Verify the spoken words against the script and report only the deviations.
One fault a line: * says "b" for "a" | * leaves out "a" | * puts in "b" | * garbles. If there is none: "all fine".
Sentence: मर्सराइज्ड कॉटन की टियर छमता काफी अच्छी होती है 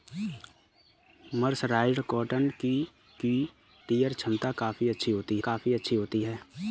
* puts in "की"
* puts in "काफी अच्छी होती"